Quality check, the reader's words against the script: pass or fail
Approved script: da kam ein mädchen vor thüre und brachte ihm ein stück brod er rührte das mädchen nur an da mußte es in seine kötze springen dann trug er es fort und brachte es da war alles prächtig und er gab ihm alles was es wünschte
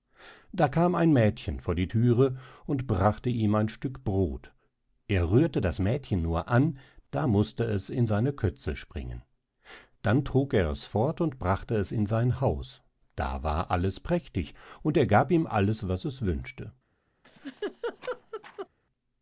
fail